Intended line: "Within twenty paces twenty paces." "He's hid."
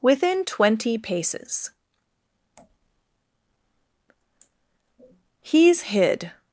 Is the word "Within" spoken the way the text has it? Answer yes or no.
yes